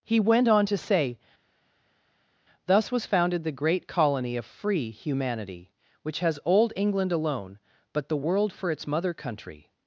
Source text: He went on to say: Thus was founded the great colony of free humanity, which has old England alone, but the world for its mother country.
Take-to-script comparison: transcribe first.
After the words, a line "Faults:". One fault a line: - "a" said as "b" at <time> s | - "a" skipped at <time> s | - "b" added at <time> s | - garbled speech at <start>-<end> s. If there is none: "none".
He went on to say: Thus was founded the great colony of free humanity, which has old England alone, but the world for its mother country.
Faults:
none